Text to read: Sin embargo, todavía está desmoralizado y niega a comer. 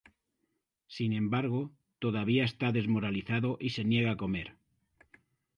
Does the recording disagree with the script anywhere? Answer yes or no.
yes